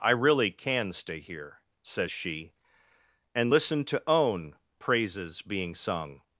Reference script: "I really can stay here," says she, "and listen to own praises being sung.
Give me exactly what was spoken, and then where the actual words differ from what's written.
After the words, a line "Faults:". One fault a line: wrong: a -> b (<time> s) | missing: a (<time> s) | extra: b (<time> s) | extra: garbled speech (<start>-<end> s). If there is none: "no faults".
"I really can stay here," says she, "and listen to own praises being sung.
Faults:
no faults